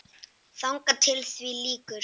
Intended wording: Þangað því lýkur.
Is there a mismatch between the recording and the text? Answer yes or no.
yes